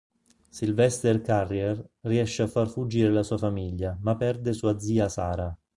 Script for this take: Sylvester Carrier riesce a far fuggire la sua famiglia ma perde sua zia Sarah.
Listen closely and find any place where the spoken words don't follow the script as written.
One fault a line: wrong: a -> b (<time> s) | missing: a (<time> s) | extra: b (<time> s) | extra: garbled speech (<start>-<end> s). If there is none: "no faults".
no faults